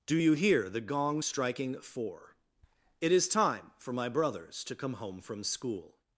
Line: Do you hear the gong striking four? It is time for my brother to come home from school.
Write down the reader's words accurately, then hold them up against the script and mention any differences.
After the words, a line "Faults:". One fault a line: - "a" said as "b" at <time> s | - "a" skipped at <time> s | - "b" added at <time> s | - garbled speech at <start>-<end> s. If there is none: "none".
Do you hear the gong striking four? It is time for my brothers to come home from school.
Faults:
- "brother" said as "brothers" at 4.1 s